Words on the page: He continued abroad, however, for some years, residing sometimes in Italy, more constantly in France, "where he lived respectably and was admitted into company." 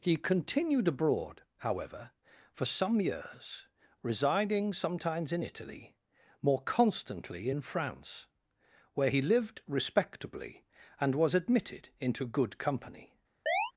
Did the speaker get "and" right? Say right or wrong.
right